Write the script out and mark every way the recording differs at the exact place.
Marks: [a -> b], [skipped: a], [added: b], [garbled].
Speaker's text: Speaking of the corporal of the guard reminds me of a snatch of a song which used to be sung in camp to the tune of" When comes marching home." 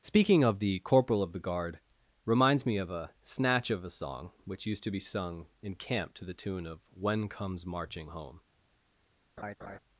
Speaking of the corporal of the guard reminds me of a snatch of a song which used to be sung in camp to the tune of" When comes marching home."